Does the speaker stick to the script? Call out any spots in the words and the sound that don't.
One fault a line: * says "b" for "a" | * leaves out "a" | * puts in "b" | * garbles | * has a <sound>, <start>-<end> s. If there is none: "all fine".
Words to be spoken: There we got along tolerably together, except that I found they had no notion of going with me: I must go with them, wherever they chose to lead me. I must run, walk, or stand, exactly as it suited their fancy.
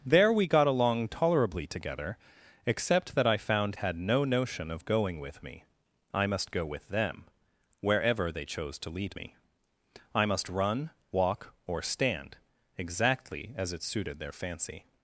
* leaves out "they"